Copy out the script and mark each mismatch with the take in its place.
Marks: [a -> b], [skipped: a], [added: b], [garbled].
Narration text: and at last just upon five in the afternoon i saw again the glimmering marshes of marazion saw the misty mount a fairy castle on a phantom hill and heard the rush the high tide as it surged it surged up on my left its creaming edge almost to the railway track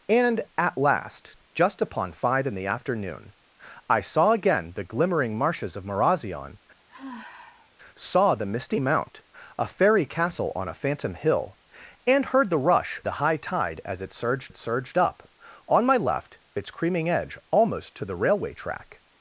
and at last just upon five in the afternoon i saw again the glimmering marshes of marazion saw the misty mount a fairy castle on a phantom hill and heard the rush the high tide as it surged it surged up on my left its creaming edge almost to the railway track